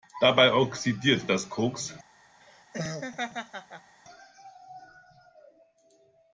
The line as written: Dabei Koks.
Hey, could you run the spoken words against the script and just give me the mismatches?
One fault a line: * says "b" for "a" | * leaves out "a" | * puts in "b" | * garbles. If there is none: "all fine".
* puts in "oxidiert das"